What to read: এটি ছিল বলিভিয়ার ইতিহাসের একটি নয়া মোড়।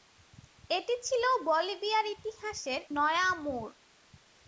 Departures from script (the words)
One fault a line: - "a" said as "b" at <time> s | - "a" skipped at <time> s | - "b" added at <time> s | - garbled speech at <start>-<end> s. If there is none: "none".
- "একটি" skipped at 2.8 s